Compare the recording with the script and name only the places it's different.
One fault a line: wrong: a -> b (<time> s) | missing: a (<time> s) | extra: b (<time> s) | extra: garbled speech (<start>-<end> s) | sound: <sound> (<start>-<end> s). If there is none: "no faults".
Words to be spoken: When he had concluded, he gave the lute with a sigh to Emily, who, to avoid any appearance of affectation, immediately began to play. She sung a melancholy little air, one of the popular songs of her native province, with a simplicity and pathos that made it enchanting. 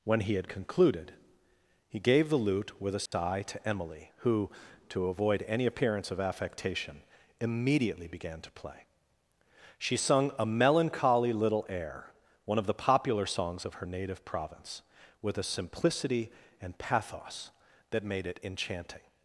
sound: dropout (3.1-3.1 s)